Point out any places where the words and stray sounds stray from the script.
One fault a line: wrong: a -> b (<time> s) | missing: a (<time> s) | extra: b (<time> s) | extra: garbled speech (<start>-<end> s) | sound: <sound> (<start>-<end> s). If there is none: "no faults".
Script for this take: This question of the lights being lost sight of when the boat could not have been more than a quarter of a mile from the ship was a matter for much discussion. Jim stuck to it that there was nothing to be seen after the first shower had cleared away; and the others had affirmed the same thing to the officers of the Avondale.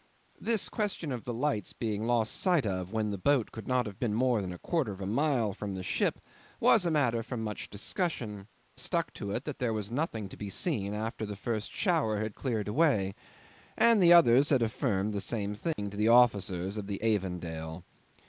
missing: Jim (8.5 s)
sound: dropout (15.7-15.8 s)